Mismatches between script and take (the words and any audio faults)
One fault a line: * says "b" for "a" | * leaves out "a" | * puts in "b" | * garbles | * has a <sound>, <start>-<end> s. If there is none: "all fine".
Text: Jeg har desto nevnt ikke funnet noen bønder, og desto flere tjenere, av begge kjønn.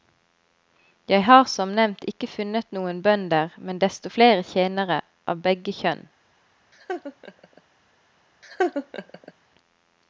* says "som" for "desto"
* says "men" for "og"
* has a laugh, 6.7-7.6 s
* has a laugh, 8.4-9.3 s